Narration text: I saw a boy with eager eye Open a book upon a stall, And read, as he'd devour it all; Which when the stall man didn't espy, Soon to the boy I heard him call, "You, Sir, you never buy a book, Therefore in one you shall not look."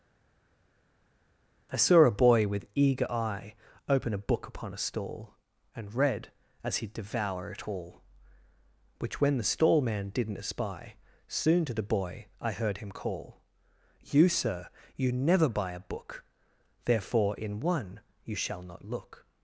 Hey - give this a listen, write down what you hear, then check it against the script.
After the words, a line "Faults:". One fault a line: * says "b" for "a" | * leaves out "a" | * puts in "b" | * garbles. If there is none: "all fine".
I saw a boy with eager eye Open a book upon a stall, And read, as he'd devour it all; Which when the stall man didn't espy, Soon to the boy I heard him call, "You, Sir, you never buy a book, Therefore in one you shall not look."
Faults:
all fine